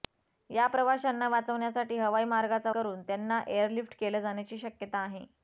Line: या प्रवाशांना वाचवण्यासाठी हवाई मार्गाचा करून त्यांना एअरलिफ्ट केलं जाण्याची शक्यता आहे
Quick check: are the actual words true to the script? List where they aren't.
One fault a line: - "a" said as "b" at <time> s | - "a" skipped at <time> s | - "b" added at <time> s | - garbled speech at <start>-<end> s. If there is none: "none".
none